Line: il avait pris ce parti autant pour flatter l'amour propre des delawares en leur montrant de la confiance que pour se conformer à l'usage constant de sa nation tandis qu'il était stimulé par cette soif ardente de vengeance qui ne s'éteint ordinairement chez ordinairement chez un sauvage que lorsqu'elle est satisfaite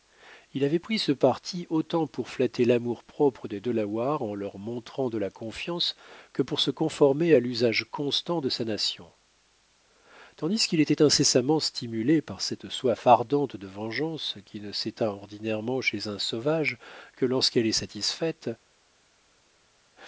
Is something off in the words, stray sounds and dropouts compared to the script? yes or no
yes